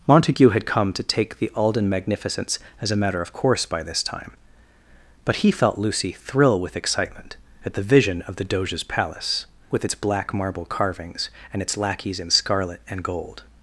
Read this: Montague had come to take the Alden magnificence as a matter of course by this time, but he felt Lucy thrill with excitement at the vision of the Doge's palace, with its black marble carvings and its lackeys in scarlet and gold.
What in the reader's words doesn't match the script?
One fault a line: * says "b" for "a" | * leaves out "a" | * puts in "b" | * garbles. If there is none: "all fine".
all fine